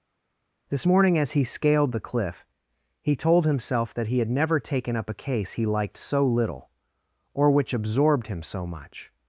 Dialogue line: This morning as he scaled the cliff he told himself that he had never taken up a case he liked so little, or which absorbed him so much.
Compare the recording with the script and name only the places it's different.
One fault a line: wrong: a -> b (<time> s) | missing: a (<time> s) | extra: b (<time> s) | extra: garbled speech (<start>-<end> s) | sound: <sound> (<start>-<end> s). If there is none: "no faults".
no faults